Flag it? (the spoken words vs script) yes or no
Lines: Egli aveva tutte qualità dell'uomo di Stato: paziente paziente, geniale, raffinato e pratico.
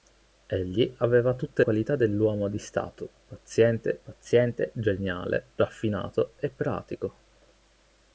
no